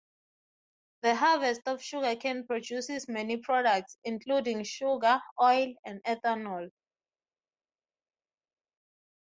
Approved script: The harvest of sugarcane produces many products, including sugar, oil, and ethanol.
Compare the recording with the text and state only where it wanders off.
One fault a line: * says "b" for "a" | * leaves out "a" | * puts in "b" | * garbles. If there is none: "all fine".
all fine